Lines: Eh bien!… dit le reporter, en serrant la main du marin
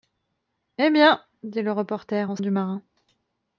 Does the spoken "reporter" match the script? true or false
true